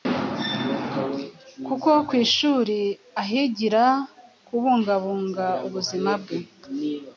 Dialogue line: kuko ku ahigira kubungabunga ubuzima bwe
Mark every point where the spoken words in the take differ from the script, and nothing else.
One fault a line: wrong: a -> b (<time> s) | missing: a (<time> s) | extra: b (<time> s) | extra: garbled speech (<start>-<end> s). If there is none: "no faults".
extra: ishuri (2.2 s)